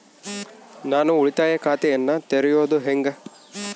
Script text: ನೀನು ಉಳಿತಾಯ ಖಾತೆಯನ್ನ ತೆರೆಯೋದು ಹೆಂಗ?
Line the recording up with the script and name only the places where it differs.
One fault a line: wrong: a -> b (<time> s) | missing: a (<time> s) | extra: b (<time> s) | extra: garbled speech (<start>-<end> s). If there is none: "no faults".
wrong: ನೀನು -> ನಾನು (0.8 s)